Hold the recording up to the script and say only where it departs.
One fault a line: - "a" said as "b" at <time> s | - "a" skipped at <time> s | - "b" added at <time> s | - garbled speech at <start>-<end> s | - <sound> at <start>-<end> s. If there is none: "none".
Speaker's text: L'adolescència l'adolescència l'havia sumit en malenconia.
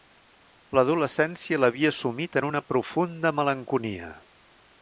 - "l'adolescència" skipped at 1.6 s
- "una profunda" added at 2.5 s